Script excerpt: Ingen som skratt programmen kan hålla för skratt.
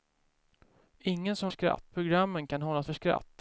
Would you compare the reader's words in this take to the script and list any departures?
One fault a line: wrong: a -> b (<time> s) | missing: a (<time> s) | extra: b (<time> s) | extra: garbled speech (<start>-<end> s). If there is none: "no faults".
no faults